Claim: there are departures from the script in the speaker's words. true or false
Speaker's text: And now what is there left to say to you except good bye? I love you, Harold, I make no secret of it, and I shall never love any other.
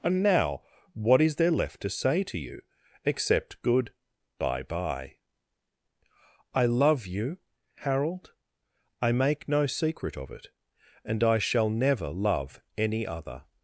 true